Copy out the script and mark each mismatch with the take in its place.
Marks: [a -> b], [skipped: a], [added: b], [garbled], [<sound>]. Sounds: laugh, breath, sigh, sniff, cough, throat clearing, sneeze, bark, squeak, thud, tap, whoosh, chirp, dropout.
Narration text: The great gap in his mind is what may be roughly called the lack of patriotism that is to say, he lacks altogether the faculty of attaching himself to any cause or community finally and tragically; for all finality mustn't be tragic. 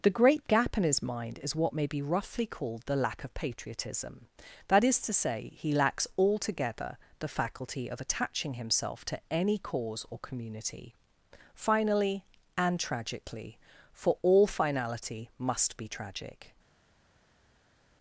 The great gap in his mind is what may be roughly called the lack of patriotism that is to say, he lacks altogether the faculty of attaching himself to any cause or community finally and tragically; for all finality [mustn't -> must] be tragic.